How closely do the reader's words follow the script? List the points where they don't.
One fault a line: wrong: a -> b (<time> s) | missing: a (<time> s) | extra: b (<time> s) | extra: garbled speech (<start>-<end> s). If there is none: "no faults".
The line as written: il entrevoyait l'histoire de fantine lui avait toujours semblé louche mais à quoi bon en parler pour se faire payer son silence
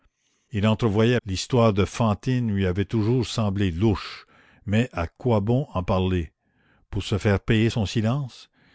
no faults